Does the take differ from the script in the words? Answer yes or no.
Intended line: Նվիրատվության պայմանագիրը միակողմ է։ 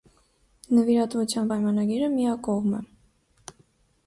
no